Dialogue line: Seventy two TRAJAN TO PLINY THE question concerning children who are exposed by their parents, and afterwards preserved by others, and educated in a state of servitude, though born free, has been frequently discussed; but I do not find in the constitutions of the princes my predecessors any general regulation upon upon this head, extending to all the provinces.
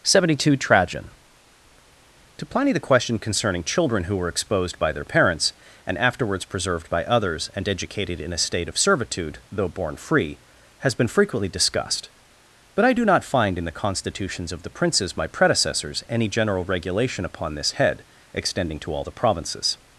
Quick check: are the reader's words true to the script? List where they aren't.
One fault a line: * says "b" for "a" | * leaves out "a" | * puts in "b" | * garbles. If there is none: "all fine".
* says "were" for "are"
* leaves out "upon"